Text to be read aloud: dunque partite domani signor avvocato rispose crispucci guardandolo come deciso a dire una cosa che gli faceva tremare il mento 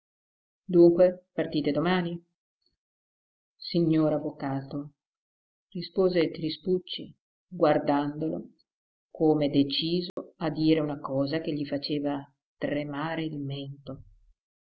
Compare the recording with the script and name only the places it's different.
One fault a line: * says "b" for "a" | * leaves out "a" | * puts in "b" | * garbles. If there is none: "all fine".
all fine